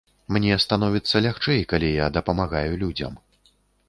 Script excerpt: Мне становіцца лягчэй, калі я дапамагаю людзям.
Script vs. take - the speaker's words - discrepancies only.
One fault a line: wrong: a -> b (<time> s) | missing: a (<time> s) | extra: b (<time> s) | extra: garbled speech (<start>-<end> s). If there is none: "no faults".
no faults